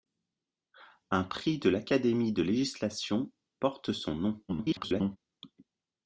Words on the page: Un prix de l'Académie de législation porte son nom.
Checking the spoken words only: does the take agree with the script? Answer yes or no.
no